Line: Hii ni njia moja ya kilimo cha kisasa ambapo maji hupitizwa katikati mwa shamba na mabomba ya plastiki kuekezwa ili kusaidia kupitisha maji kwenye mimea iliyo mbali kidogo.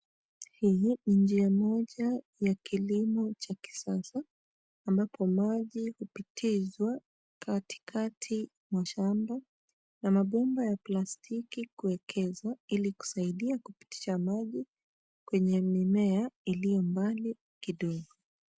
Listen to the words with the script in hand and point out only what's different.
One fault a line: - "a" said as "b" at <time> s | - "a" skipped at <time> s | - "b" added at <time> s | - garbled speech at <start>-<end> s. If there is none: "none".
none